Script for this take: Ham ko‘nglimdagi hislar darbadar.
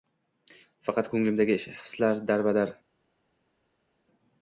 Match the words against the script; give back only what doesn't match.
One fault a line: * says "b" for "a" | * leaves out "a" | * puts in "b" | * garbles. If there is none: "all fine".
* says "Faqat" for "Ham"